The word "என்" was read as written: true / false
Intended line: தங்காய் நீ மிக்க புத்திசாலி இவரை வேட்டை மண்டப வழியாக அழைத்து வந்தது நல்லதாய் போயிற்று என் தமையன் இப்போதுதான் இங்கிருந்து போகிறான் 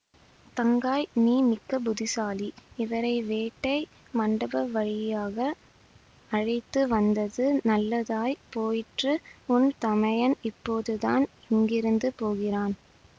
false